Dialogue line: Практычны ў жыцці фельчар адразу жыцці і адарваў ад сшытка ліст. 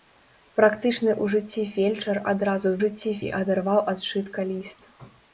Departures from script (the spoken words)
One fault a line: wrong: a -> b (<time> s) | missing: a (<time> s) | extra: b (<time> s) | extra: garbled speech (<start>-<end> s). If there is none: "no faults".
no faults